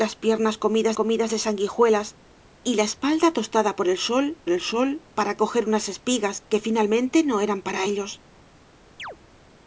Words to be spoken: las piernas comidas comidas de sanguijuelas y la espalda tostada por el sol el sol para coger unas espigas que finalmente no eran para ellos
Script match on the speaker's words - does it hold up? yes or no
yes